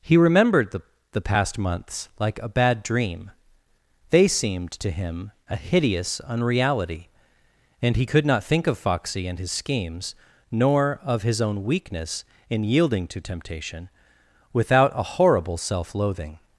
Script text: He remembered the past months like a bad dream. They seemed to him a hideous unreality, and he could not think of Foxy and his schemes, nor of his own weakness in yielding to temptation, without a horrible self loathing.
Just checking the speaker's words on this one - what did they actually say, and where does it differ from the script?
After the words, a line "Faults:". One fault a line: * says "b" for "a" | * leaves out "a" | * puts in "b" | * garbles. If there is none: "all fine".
He remembered the the past months like a bad dream. They seemed to him a hideous unreality, and he could not think of Foxy and his schemes, nor of his own weakness in yielding to temptation, without a horrible self loathing.
Faults:
* puts in "the"